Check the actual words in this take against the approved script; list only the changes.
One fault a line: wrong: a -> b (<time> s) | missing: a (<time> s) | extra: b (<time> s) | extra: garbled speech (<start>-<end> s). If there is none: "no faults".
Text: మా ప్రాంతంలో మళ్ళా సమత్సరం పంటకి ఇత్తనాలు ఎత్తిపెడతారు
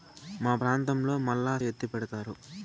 missing: సమత్సరం పంటకి ఇత్తనాలు (1.5 s)